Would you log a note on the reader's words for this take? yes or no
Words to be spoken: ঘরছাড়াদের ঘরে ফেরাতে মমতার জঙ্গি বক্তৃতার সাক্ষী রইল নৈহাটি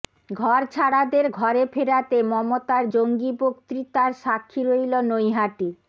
no